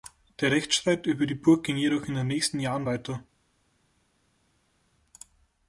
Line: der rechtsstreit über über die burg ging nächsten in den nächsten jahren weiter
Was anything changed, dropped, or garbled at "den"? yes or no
no